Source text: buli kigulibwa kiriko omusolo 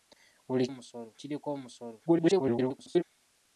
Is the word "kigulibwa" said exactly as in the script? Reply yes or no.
no